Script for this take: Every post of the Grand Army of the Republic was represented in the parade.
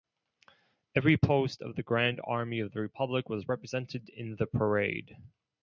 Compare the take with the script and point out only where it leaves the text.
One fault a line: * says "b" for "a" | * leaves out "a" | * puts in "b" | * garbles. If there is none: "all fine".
all fine